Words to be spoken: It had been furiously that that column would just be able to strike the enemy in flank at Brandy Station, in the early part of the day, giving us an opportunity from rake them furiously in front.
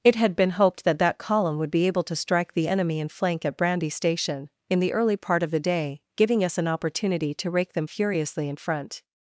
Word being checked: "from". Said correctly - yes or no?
no